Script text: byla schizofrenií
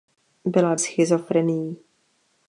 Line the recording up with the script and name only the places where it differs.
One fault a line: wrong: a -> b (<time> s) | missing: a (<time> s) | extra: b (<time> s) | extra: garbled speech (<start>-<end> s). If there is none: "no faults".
no faults